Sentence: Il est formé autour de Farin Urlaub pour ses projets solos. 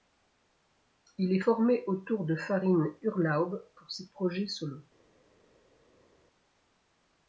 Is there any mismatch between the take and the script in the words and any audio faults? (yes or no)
no